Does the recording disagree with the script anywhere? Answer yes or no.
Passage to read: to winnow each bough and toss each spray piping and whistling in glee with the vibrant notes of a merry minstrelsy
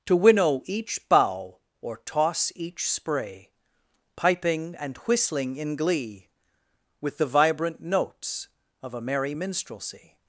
yes